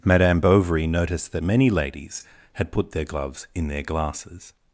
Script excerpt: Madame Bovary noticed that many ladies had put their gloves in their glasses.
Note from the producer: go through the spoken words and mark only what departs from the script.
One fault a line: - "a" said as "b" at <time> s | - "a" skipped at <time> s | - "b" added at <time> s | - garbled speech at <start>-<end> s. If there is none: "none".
none